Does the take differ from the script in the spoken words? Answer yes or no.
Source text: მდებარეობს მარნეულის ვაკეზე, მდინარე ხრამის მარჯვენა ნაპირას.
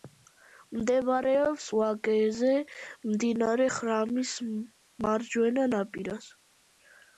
yes